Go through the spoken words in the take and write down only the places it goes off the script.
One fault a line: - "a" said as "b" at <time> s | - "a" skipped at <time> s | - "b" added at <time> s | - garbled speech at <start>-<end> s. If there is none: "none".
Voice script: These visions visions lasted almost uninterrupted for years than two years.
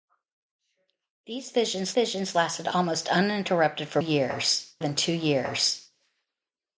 none